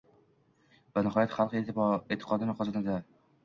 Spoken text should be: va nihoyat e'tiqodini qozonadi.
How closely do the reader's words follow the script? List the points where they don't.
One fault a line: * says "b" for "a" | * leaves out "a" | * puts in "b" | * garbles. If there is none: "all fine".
* puts in "xalq"